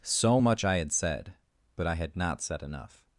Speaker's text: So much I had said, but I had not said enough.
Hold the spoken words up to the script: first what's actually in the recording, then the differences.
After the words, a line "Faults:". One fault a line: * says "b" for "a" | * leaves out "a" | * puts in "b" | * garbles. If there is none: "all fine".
So much I had said, but I had not said enough.
Faults:
all fine